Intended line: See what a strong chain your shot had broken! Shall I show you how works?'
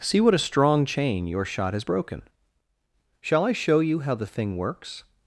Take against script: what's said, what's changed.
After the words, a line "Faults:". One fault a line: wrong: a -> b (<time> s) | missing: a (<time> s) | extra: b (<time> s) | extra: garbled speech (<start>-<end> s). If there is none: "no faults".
See what a strong chain your shot has broken! Shall I show you how the thing works?'
Faults:
wrong: had -> has (1.7 s)
extra: the thing (4.1 s)